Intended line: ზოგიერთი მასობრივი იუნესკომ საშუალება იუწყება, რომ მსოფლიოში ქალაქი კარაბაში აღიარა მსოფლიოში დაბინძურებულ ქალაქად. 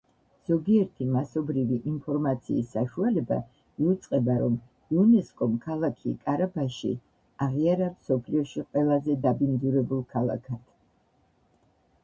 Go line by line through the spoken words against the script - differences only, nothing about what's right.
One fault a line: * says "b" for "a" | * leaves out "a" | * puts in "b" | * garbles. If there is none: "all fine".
* says "ინფორმაციის" for "იუნესკომ"
* says "იუნესკომ" for "მსოფლიოში"
* puts in "ყველაზე"